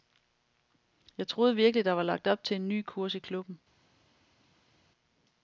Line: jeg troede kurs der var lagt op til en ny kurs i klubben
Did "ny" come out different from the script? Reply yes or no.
no